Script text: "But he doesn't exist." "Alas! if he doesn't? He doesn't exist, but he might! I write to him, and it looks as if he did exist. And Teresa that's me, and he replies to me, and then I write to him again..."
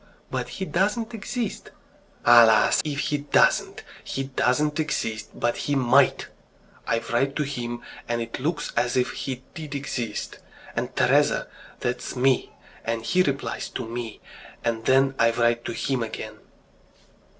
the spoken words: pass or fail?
pass